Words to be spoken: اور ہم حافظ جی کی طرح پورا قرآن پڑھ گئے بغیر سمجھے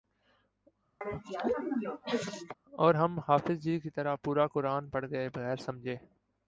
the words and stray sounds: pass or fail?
fail